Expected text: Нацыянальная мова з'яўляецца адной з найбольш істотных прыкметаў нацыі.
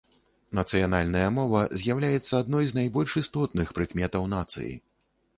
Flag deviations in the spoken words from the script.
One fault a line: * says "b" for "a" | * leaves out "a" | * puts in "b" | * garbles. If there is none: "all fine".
all fine